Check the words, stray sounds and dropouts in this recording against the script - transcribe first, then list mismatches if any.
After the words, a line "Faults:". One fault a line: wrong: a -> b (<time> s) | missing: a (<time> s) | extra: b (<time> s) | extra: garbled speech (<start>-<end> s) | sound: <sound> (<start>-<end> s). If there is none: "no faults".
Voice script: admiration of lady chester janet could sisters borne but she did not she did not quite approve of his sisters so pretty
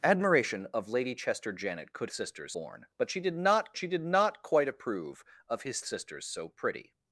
admiration of lady chester janet could sisters borne but she did not she did not quite approve of his sisters so pretty
Faults:
no faults